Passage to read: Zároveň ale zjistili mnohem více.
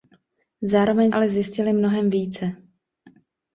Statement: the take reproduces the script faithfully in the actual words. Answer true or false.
true